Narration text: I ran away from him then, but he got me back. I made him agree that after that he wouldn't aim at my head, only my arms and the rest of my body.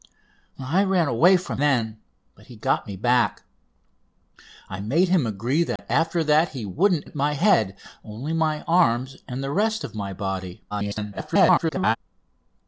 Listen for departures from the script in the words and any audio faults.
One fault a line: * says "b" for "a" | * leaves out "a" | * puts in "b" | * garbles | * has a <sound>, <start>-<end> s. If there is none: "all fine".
* leaves out "him"
* has a dropout, 5.8-5.8 s
* leaves out "aim"
* garbles